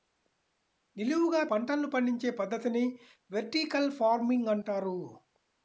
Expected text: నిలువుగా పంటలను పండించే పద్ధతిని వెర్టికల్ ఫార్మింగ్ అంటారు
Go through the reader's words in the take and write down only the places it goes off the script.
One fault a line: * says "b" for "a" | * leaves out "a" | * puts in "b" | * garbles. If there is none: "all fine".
all fine